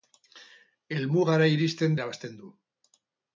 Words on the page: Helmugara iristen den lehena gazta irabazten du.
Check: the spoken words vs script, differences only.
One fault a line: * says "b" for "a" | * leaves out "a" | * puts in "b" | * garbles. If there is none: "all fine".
* leaves out "den lehena gazta"